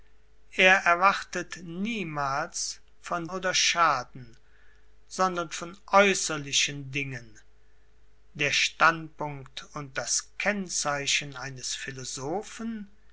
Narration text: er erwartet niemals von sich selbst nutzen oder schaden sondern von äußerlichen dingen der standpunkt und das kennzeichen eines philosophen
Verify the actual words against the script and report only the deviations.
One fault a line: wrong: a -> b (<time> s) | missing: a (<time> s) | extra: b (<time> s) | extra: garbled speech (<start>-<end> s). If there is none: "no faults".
missing: sich selbst nutzen (3.3 s)